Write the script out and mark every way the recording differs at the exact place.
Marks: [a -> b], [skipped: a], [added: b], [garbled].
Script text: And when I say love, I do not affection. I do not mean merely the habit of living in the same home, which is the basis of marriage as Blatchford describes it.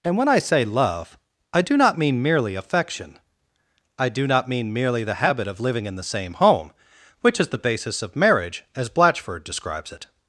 And when I say love, I do not [added: mean merely] affection. I do not mean merely the habit of living in the same home, which is the basis of marriage as Blatchford describes it.